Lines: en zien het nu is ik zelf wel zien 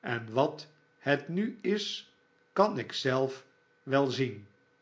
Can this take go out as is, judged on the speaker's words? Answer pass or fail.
fail